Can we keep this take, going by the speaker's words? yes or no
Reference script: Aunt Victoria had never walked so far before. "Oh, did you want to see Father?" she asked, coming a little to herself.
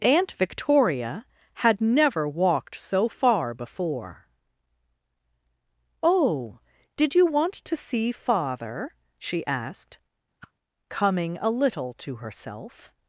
yes